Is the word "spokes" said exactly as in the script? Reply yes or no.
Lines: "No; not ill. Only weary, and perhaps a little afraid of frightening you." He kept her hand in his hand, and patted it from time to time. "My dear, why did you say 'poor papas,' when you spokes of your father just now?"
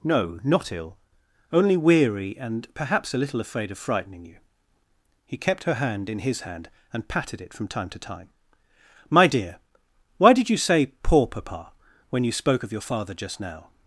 no